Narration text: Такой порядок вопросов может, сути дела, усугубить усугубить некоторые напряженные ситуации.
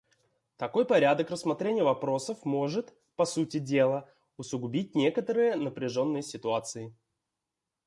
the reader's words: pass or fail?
fail